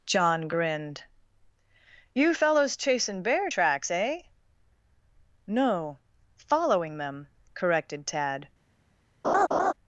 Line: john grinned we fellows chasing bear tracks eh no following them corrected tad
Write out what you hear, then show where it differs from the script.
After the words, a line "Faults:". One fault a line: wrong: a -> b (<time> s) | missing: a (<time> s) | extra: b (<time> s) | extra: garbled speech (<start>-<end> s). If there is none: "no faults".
john grinned you fellows chasing bear tracks eh no following them corrected tad
Faults:
wrong: we -> you (2.1 s)